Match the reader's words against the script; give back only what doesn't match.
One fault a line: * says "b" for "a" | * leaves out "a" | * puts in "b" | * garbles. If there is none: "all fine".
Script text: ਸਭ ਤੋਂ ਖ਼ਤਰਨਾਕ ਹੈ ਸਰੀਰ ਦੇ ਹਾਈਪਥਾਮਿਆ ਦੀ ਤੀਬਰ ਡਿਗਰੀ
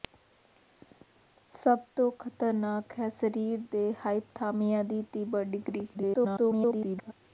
* garbles